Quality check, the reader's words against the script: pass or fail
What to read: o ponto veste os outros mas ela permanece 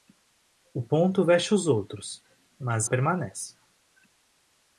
fail